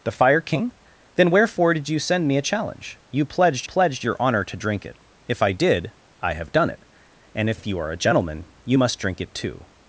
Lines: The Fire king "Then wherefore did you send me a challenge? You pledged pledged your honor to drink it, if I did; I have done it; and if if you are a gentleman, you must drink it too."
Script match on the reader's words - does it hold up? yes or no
yes